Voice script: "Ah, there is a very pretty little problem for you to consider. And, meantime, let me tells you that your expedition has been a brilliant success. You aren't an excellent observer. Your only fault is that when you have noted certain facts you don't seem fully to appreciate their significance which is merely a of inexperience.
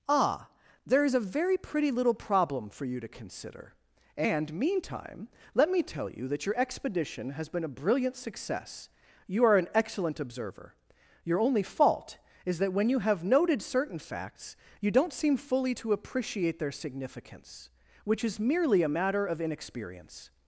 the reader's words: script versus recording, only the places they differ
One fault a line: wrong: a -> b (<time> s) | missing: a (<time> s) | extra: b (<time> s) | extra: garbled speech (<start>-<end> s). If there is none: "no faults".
wrong: tells -> tell (5.8 s)
wrong: aren't -> are (9.4 s)
extra: matter (18.9 s)